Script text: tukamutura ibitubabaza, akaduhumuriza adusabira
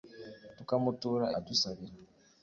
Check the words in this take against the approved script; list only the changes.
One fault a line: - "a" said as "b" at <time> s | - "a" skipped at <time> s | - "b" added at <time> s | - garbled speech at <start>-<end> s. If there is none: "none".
- "ibitubabaza akaduhumuriza" skipped at 1.2 s